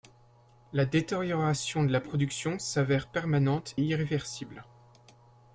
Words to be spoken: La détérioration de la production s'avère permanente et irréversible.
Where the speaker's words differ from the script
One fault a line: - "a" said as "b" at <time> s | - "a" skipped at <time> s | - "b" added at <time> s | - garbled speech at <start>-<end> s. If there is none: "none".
- "et" skipped at 3.8 s